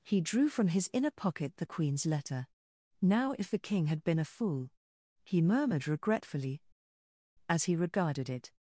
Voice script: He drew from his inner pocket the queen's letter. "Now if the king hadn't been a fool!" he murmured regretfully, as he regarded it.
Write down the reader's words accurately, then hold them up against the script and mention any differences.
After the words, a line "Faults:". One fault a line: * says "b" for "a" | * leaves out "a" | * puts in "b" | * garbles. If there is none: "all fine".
He drew from his inner pocket the queen's letter. "Now if the king had been a fool!" he murmured regretfully, as he regarded it.
Faults:
* says "had" for "hadn't"